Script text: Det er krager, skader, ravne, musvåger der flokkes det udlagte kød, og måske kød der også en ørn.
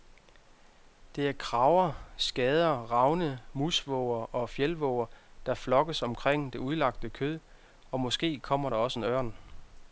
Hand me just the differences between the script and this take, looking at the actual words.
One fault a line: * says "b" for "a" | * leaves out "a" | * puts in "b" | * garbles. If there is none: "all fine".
* puts in "og fjeldvåger"
* puts in "omkring"
* says "kommer" for "kød"